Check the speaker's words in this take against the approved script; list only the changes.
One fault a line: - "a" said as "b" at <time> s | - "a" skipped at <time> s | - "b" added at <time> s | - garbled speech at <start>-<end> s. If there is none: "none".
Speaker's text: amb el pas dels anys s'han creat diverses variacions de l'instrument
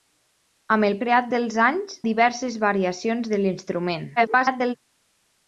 - "pas" said as "creat" at 1.0 s
- "s'han creat" skipped at 2.0 s
- garbled speech at 4.2-4.8 s